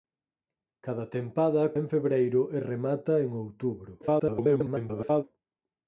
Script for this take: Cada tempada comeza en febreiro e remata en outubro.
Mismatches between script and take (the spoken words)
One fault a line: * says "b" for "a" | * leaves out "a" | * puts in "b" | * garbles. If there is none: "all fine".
* leaves out "comeza"
* garbles